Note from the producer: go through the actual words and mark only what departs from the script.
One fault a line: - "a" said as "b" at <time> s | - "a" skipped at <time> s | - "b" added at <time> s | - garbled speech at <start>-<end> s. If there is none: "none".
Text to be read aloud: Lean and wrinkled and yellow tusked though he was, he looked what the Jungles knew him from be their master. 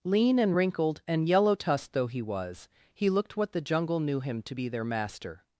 - "Jungles" said as "Jungle" at 3.6 s
- "from" said as "to" at 4.4 s